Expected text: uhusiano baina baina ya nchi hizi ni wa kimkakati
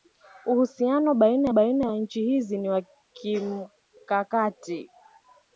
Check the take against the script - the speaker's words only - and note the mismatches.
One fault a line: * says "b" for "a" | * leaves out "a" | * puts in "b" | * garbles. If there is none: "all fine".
all fine